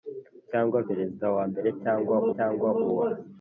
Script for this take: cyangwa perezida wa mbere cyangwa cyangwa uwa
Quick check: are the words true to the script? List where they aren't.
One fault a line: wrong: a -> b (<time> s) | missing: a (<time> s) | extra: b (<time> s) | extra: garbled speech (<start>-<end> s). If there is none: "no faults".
no faults